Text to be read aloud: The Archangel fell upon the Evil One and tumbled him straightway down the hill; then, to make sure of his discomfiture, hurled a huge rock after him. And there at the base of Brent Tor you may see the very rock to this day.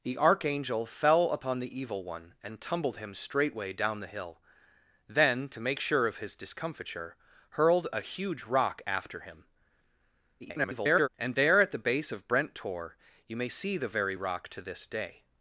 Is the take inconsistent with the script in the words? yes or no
yes